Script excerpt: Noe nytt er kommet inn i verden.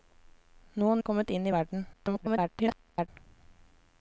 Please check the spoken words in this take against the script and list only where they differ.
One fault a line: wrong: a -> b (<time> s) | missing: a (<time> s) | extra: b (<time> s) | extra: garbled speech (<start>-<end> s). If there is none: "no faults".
missing: nytt (0.9 s)
extra: garbled speech (1.9-3.1 s)